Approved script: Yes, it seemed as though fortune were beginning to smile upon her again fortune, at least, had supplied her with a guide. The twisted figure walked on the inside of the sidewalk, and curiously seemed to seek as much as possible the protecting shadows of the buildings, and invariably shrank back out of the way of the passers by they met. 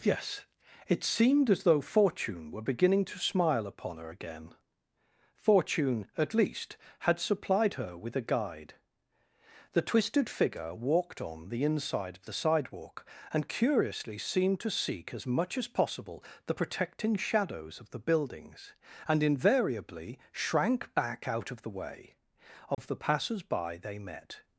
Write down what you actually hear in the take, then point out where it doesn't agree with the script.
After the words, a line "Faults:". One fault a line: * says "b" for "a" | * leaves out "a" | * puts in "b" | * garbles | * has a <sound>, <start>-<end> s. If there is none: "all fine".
Yes, it seemed as though fortune were beginning to smile upon her again fortune, at least, had supplied her with a guide. The twisted figure walked on the inside of the sidewalk, and curiously seemed to seek as much as possible the protecting shadows of the buildings, and invariably shrank back out of the way of the passers by they met.
Faults:
* has a dropout, 22.7-22.8 s